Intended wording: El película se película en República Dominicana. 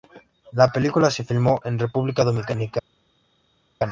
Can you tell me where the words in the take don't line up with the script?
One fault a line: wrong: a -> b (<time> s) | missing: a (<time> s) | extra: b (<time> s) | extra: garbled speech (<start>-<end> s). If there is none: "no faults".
wrong: El -> La (0.5 s)
wrong: película -> filmó (1.2 s)